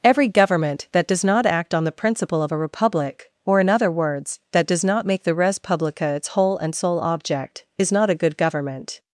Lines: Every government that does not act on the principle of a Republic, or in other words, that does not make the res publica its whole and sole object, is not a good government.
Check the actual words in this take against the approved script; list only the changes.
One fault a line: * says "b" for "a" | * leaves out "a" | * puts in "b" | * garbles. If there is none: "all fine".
all fine